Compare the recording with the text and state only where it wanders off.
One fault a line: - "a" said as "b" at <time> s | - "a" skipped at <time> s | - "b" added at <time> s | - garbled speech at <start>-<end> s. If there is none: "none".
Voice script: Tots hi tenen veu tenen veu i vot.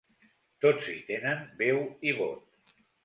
- "tenen veu" skipped at 1.8 s